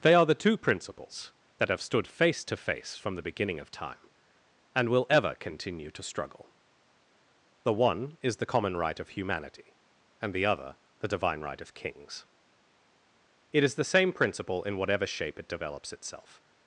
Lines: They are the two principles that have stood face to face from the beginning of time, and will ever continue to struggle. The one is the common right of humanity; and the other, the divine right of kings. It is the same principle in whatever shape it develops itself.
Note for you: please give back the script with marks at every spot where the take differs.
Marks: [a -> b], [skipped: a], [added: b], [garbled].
They are the two principles that have stood face to face from the beginning of time, and will ever continue to struggle. The one is the common right of humanity; and the other, the divine right of kings. It is the same principle in whatever shape it develops itself.